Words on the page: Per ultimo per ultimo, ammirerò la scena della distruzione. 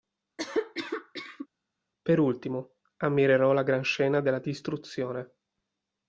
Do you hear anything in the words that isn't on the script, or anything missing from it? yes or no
yes